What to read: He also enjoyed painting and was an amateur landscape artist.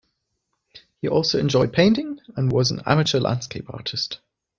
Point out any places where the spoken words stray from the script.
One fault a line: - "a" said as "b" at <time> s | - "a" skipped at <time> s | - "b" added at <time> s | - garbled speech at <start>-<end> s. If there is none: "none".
none